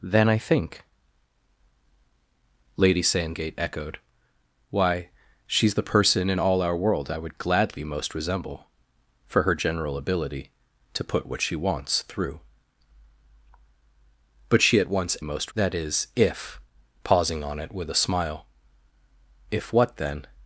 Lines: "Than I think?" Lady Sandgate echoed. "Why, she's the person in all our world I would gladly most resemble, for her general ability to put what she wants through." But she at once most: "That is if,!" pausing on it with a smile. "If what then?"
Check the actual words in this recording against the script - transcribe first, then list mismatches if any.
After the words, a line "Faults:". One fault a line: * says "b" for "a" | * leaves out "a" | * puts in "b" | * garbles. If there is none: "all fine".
"Than I think?" Lady Sandgate echoed. "Why, she's the person in all our world I would gladly most resemble, for her general ability to put what she wants through." But she at once most: "That is if,!" pausing on it with a smile. "If what then?"
Faults:
all fine